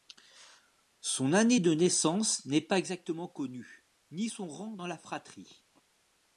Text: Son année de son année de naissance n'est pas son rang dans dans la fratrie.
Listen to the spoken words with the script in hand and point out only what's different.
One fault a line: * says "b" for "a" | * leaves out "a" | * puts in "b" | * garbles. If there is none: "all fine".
* says "naissance n'est pas exactement connue ni" for "son année de naissance n'est pas"
* leaves out "dans"